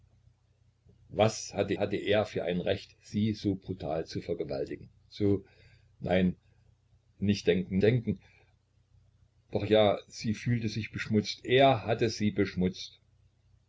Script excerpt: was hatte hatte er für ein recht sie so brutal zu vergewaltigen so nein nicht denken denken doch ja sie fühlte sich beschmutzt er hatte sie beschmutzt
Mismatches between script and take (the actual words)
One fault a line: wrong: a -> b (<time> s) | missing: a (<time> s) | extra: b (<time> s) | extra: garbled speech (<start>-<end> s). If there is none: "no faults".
no faults